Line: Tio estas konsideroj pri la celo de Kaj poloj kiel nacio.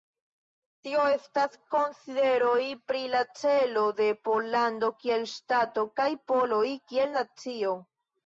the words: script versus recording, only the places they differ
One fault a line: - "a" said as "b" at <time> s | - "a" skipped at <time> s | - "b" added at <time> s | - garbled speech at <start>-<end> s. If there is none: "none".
- "Pollando kiel ŝtato" added at 4.3 s